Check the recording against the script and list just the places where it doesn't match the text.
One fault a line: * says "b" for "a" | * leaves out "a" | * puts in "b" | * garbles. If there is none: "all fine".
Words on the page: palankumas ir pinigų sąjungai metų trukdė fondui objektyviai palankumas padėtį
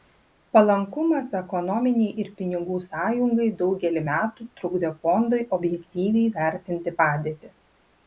* puts in "ekonominei"
* puts in "daugelį"
* says "vertinti" for "palankumas"